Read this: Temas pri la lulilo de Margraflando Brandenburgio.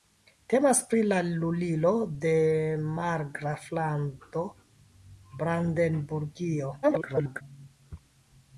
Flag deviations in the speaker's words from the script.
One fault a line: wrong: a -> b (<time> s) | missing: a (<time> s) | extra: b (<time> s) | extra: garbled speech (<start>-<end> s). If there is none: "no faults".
extra: garbled speech (6.8-7.4 s)